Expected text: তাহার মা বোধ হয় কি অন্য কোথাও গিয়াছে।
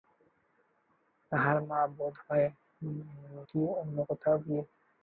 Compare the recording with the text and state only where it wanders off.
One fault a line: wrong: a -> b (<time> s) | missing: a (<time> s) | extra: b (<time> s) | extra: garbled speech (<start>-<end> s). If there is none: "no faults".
no faults